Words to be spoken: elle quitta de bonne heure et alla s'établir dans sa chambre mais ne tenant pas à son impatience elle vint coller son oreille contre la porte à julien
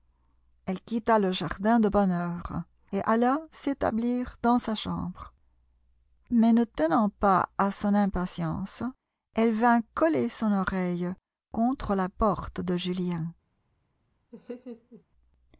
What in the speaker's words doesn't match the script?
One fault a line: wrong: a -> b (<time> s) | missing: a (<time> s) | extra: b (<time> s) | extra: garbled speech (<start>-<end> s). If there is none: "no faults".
extra: le jardin (1.2 s)
wrong: à -> de (12.6 s)